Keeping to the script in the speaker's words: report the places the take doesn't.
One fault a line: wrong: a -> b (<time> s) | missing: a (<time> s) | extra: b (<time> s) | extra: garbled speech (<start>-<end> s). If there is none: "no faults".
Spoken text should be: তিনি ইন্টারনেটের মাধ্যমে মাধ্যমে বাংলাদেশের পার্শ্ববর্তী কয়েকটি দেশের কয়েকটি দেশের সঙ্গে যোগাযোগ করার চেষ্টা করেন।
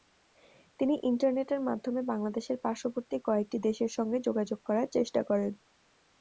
missing: মাধ্যমে (2.0 s)
missing: কয়েকটি দেশের (3.9 s)